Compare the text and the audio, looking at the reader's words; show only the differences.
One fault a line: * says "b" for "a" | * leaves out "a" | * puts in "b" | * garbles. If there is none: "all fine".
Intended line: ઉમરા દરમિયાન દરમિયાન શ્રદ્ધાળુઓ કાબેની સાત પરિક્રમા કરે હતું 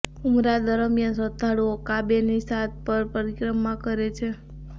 * leaves out "દરમિયાન"
* puts in "પર"
* says "છે" for "હતું"